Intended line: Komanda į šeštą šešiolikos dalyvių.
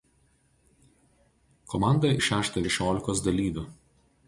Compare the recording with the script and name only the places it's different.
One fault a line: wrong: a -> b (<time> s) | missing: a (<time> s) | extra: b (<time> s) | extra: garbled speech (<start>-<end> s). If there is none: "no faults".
no faults